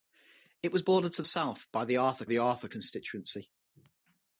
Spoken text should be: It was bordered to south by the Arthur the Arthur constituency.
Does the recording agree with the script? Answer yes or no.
yes